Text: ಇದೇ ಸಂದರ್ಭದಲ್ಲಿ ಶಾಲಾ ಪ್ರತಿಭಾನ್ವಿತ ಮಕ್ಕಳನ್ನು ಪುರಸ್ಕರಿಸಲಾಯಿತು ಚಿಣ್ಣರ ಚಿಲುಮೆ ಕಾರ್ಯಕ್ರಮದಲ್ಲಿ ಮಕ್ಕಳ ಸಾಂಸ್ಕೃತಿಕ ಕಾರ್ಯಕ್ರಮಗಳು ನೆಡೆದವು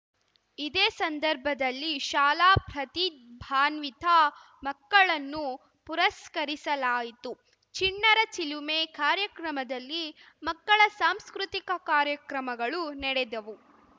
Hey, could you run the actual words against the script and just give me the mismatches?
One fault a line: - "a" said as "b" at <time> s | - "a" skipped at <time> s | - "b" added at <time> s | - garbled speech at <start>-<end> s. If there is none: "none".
none